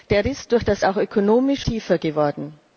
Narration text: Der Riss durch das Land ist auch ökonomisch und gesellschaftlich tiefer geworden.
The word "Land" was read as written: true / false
false